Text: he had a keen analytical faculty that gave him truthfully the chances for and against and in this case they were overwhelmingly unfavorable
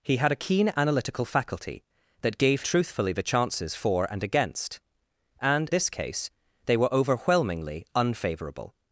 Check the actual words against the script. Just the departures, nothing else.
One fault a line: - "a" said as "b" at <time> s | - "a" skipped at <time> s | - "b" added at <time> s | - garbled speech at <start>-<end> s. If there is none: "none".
- "him" skipped at 2.6 s
- "in" skipped at 5.7 s